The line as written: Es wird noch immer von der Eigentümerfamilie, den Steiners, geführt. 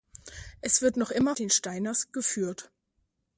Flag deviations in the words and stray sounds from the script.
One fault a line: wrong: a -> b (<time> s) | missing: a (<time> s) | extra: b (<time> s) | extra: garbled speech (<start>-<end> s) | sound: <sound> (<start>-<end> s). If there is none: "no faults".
missing: von der Eigentümerfamilie (1.4 s)